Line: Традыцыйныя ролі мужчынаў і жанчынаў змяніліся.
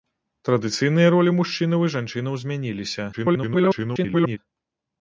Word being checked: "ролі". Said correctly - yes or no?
yes